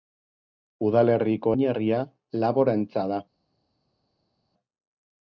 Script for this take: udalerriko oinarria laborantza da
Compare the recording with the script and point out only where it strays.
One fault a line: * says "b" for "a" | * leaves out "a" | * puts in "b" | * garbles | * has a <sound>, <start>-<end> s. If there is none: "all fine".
all fine